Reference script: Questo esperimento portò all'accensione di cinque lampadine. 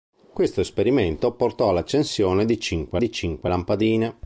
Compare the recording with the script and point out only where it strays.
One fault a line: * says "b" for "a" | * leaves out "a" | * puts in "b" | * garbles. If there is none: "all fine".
* puts in "di cinque"